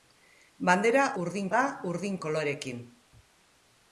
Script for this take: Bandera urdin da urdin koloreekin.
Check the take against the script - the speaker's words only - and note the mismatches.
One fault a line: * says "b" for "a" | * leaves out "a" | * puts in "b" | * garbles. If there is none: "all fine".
all fine